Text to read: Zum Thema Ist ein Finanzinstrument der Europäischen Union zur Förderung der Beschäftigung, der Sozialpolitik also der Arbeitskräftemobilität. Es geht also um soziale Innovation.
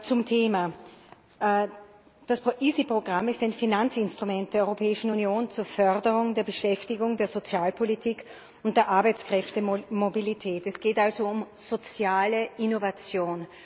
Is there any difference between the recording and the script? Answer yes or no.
yes